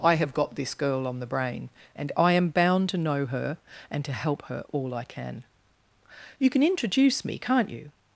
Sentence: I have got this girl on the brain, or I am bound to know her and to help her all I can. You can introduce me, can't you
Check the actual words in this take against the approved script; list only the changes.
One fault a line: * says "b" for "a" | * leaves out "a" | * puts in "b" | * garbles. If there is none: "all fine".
* says "and" for "or"